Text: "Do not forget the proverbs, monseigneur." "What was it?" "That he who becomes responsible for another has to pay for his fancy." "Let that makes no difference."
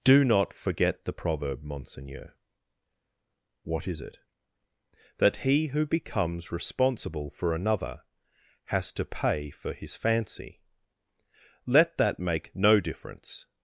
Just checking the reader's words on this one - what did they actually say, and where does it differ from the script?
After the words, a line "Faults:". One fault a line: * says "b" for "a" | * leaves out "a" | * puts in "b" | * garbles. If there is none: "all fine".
"Do not forget the proverb, monseigneur." "What is it?" "That he who becomes responsible for another has to pay for his fancy." "Let that make no difference."
Faults:
* says "proverb" for "proverbs"
* says "is" for "was"
* says "make" for "makes"